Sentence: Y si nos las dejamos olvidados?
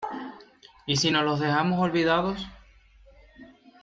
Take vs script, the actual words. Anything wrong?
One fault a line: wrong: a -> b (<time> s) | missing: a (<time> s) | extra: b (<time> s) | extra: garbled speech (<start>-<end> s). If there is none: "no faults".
wrong: las -> los (1.2 s)